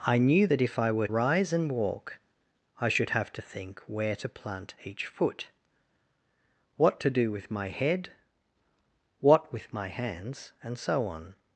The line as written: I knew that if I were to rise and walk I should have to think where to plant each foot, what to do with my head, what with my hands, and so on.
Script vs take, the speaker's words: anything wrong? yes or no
yes